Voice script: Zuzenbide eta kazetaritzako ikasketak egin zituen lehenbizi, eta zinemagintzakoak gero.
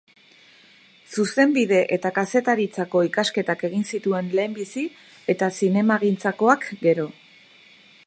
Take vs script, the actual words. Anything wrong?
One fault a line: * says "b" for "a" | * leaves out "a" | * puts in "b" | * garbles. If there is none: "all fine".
all fine